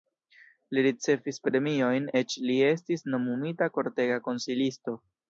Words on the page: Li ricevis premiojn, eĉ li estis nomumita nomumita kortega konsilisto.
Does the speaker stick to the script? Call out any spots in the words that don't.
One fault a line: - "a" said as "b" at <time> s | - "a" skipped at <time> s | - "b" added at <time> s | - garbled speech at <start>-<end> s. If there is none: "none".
- "nomumita" skipped at 3.7 s